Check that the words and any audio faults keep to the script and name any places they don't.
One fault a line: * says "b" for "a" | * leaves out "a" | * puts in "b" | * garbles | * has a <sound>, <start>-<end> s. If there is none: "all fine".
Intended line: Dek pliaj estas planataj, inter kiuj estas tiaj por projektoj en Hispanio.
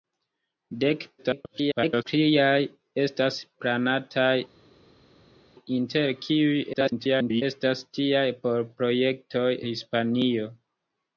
* garbles
* garbles
* leaves out "en"